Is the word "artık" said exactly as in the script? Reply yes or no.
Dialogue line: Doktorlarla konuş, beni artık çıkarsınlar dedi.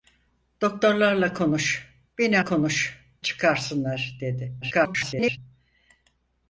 no